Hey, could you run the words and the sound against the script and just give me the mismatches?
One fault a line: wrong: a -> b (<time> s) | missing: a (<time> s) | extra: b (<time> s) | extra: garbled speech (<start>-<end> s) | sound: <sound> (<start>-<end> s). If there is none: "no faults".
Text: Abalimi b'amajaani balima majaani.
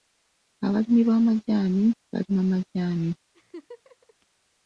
sound: laugh (3.3-4.1 s)